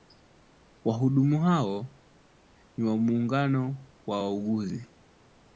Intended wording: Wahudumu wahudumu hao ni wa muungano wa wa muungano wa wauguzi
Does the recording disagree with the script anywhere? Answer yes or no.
yes